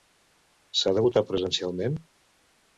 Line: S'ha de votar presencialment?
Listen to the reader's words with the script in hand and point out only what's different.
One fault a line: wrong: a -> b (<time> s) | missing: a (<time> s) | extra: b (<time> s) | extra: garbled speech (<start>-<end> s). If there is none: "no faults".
no faults